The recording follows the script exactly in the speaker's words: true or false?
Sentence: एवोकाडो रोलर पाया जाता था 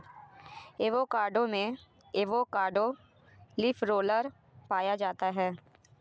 false